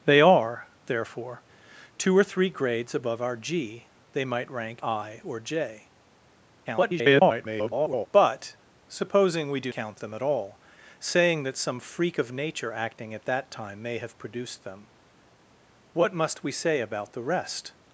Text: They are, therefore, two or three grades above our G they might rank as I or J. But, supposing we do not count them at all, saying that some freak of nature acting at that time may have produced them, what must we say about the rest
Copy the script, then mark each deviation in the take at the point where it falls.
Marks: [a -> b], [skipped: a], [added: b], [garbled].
They are, therefore, two or three grades above our G they might rank [skipped: as] I or J. [garbled] But, supposing we do [skipped: not] count them at all, saying that some freak of nature acting at that time may have produced them, what must we say about the rest